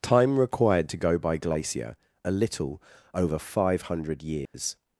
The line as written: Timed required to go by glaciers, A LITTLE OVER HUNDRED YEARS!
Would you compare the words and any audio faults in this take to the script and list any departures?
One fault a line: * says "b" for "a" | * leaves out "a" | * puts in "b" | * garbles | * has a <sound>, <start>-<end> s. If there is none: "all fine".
* says "Time" for "Timed"
* says "glacier" for "glaciers"
* puts in "FIVE"
* has a dropout, 4.5-4.5 s